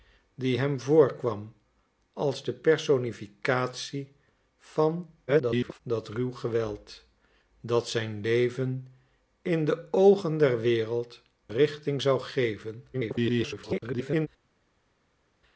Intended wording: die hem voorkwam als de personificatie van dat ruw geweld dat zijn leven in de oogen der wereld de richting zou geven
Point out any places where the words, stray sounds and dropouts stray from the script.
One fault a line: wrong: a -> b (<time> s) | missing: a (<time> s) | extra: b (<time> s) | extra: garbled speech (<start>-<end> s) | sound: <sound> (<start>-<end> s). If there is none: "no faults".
extra: garbled speech (5.3-5.8 s)
missing: de (11.2 s)
extra: garbled speech (12.9-14.3 s)